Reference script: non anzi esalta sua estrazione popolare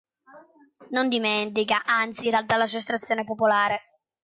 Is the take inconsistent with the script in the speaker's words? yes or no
yes